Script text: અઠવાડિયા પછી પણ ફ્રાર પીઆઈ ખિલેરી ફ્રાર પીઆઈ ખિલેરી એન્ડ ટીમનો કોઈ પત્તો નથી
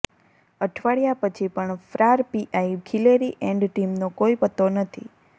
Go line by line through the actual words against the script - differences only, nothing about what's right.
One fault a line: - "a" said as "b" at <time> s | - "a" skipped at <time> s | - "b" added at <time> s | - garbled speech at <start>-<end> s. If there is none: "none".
- "ફ્રાર પીઆઈ ખિલેરી" skipped at 3.3 s